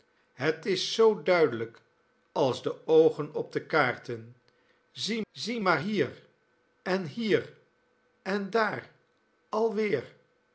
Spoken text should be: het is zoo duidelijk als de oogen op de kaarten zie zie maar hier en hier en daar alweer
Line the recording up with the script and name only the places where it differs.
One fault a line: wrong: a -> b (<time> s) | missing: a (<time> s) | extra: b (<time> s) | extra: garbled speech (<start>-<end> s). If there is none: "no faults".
no faults